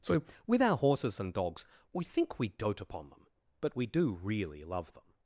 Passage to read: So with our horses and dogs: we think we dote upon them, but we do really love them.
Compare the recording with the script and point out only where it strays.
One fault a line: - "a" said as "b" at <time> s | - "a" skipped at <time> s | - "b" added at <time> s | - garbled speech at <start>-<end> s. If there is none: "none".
none